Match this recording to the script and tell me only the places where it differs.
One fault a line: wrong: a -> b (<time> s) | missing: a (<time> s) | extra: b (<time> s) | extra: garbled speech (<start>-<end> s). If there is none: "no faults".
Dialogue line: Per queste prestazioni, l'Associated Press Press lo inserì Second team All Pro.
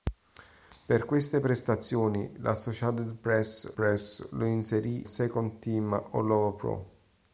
no faults